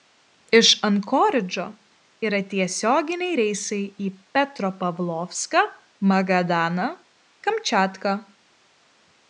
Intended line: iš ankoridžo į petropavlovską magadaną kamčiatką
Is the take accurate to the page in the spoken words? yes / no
no